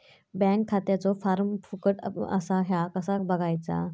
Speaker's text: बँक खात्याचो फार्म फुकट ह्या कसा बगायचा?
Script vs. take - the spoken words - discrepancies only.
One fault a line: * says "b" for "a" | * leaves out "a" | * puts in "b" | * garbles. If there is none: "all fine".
* puts in "असा"